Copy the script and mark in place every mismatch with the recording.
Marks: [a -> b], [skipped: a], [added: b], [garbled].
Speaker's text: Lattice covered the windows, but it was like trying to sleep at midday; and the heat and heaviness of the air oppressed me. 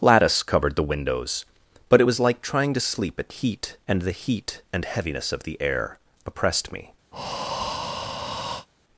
Lattice covered the windows, but it was like trying to sleep at [midday; -> heat] and the heat and heaviness of the air oppressed me.